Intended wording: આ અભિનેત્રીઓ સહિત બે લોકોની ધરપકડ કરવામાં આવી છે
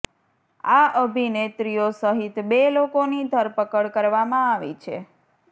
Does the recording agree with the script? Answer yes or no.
yes